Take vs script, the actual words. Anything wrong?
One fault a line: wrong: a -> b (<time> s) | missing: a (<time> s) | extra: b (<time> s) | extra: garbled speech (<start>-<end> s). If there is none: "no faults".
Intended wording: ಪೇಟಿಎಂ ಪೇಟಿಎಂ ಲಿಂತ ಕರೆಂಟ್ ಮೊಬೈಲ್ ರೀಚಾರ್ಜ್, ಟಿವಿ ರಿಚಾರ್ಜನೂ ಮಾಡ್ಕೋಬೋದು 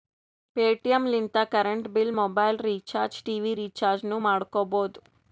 missing: ಪೇಟಿಎಂ (1.0 s)
extra: ಬಿಲ್ (1.9 s)